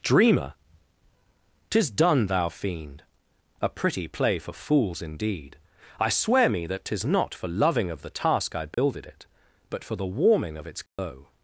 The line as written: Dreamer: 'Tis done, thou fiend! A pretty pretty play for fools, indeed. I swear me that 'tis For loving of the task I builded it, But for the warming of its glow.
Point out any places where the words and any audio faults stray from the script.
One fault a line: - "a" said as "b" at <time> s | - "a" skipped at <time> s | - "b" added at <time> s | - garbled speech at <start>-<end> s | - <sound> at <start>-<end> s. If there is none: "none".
- "pretty" skipped at 4.1 s
- "not" added at 7.0 s
- dropout at 8.7-8.8 s
- dropout at 10.9-11.0 s